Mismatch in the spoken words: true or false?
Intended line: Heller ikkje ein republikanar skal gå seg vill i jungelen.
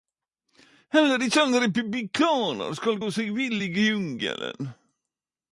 false